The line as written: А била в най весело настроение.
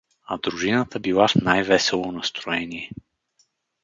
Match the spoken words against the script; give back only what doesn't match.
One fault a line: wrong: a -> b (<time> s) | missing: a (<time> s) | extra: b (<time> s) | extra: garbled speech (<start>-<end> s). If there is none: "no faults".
extra: дружината (0.4 s)